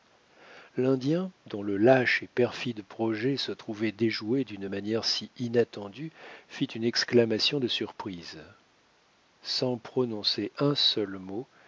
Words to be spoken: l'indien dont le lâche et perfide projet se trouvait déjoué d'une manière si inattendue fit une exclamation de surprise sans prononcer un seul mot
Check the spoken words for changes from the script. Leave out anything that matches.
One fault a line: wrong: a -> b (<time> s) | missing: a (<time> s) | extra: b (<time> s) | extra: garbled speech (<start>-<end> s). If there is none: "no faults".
no faults